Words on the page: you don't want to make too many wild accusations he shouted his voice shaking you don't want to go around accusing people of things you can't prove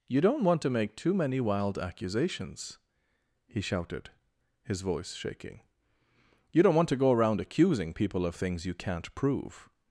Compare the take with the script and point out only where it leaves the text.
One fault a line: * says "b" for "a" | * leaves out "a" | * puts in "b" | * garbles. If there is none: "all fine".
all fine